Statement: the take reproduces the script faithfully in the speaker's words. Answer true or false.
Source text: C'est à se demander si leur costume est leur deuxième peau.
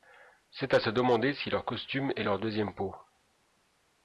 true